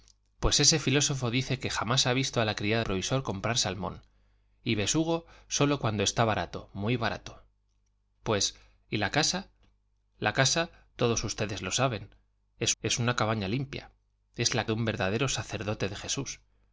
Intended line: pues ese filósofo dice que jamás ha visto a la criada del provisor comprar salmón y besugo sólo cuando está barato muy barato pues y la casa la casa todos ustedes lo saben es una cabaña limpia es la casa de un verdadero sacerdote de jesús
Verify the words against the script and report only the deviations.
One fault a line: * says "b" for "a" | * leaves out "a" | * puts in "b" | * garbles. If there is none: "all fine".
* leaves out "del"
* puts in "es"
* leaves out "casa"